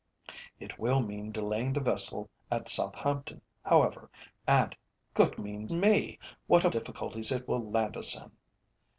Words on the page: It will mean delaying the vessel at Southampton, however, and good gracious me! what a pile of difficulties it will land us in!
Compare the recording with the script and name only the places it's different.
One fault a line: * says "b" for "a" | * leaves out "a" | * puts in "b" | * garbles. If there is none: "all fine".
* says "mean" for "gracious"
* leaves out "pile of"